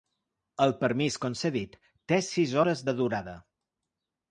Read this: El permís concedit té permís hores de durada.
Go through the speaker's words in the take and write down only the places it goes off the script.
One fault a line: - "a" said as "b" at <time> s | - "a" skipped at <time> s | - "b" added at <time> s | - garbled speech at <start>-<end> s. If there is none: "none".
- "permís" said as "sis" at 2.3 s